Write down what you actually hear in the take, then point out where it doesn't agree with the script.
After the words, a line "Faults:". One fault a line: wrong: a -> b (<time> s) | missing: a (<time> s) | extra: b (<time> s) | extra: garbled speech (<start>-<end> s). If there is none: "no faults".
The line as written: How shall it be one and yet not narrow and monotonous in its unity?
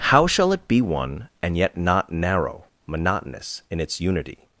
How shall it be one and yet not narrow monotonous in its unity?
Faults:
missing: and (2.6 s)